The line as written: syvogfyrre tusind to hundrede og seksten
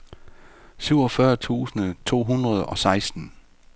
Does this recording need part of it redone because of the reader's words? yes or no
no